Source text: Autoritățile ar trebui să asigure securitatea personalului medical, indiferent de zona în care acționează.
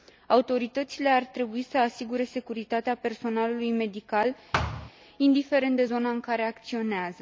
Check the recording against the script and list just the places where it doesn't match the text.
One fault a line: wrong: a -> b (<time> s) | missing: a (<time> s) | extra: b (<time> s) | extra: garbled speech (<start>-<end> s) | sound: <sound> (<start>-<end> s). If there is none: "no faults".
sound: thud (4.5-4.9 s)